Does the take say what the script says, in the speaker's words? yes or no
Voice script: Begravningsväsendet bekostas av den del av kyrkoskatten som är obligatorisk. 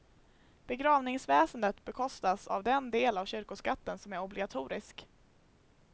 yes